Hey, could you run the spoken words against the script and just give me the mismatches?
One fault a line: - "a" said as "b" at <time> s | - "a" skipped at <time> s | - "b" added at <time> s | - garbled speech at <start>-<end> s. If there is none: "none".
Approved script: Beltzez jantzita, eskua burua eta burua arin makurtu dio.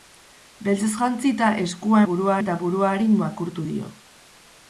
none